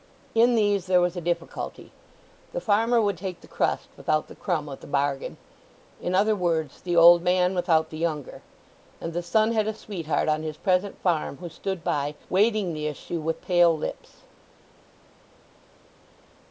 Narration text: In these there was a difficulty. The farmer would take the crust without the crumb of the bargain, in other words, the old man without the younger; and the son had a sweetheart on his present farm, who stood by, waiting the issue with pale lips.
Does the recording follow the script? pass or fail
pass